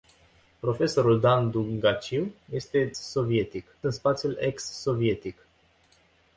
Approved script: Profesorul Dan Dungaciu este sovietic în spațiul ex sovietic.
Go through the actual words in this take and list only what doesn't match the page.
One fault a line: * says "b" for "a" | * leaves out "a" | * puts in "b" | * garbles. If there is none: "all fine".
all fine